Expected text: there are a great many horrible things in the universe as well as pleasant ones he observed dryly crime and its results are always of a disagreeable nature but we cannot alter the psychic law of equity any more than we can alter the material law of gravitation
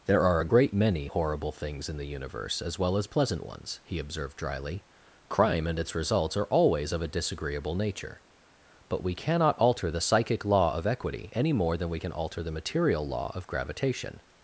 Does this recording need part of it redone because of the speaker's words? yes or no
no